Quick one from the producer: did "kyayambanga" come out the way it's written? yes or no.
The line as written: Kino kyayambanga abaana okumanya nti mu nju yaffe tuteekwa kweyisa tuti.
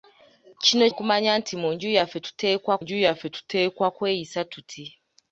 no